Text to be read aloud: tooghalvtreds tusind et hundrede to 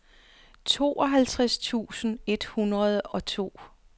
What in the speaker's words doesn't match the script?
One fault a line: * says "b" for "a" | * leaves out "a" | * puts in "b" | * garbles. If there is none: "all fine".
* puts in "og"